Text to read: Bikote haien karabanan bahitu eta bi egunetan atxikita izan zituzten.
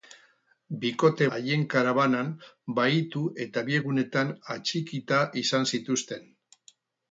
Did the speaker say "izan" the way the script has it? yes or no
yes